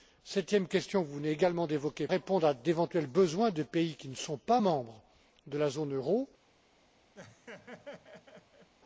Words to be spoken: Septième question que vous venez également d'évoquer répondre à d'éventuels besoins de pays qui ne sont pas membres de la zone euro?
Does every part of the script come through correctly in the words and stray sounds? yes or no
no